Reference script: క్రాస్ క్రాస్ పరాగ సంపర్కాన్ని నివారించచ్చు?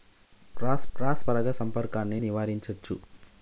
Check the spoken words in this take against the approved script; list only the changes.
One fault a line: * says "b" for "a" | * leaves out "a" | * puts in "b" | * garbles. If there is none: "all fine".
all fine